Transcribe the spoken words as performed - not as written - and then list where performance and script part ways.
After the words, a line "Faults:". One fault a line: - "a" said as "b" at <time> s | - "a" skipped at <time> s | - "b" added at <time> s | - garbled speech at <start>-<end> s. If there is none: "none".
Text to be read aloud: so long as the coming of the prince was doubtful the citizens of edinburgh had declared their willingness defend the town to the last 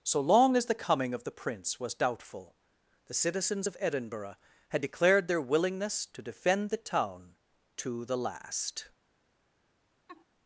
so long as the coming of the prince was doubtful the citizens of edinburgh had declared their willingness to defend the town to the last
Faults:
- "to" added at 6.1 s